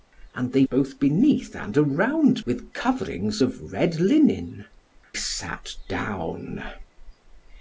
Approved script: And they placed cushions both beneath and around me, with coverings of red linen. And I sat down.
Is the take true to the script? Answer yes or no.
no